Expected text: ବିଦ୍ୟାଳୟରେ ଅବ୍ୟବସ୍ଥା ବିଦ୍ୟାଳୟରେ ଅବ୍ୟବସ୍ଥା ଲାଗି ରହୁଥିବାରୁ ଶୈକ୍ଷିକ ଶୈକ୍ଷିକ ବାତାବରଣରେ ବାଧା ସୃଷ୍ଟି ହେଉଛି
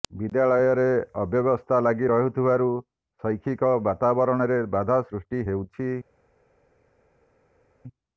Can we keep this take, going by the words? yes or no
no